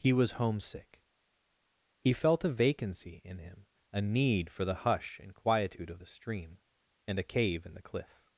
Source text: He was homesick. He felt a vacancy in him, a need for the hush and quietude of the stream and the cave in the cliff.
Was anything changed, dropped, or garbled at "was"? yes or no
no